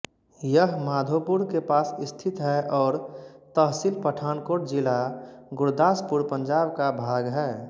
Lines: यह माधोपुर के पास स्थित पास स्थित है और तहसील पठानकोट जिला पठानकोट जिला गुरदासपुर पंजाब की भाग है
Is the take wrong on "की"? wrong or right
wrong